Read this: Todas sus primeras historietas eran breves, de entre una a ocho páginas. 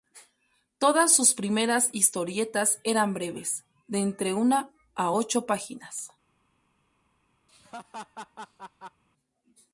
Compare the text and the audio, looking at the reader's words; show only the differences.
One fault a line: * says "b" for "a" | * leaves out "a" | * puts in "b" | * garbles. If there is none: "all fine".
all fine